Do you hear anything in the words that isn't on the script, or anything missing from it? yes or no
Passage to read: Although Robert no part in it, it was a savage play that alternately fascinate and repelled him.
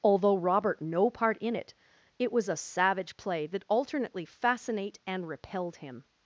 no